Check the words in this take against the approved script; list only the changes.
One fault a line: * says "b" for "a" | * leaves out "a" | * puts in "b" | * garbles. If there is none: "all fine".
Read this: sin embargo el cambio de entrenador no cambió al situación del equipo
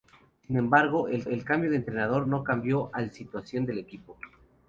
* puts in "el"